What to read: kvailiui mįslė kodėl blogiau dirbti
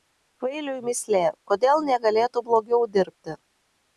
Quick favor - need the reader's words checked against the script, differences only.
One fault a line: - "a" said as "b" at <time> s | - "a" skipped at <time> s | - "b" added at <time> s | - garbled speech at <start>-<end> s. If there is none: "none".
- "negalėtų" added at 1.9 s